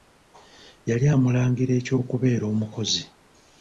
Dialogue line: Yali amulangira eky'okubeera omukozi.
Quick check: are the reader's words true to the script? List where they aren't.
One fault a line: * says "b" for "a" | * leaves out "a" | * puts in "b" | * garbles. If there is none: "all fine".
all fine